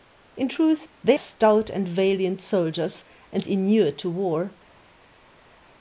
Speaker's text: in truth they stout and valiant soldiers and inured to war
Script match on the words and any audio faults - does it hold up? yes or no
yes